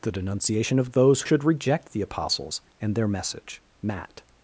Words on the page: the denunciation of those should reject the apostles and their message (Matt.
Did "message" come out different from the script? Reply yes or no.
no